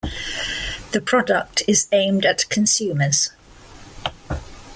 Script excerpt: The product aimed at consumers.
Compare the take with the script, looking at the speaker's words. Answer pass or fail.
fail